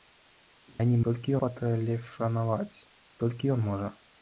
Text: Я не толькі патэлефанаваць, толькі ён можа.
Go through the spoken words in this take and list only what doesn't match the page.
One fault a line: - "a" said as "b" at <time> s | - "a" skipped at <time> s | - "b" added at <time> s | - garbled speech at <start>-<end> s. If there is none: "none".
none